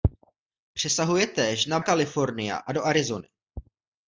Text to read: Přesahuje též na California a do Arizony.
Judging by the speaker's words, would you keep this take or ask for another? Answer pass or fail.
pass